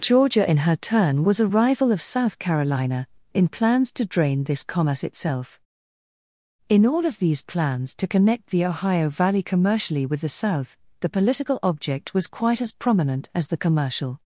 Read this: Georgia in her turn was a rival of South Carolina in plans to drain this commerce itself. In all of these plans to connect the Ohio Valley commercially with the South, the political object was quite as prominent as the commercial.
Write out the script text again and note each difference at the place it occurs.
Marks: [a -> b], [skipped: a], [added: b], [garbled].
Georgia in her turn was a rival of South Carolina in plans to drain this commerce itself. In all of these plans to connect the Ohio Valley commercially with the South, the political object was quite as prominent as the commercial.